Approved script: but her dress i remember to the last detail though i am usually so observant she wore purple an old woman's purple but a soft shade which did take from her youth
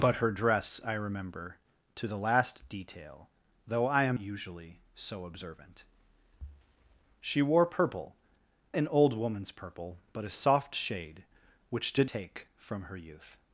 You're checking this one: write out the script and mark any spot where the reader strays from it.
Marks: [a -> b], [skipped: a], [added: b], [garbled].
but her dress i remember to the last detail though i am usually so observant she wore purple an old woman's purple but a soft shade which did take from her youth